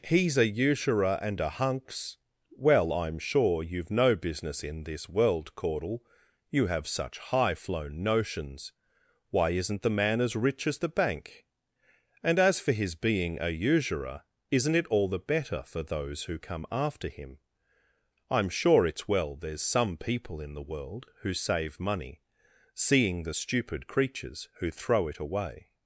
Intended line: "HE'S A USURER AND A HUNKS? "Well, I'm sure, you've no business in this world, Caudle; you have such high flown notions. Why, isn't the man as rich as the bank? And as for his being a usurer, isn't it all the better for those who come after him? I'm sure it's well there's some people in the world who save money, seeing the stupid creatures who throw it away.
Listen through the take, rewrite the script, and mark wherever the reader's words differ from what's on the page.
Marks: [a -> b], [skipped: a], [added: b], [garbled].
"HE'S A USURER AND A HUNKS? "Well, I'm sure, you've no business in this world, Caudle; you have such high flown notions. Why, isn't the man as rich as the bank? And as for his being a usurer, isn't it all the better for those who come after him? I'm sure it's well there's some people in the world who save money, seeing the stupid creatures who throw it away.